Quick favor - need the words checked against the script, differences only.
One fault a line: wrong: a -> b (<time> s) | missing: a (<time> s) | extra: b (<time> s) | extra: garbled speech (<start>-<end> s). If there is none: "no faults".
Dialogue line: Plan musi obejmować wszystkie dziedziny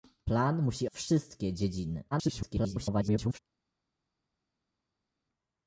missing: obejmować (0.9 s)
extra: garbled speech (2.1-3.4 s)